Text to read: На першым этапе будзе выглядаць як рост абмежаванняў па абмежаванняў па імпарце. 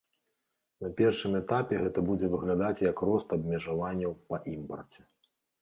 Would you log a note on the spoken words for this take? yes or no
yes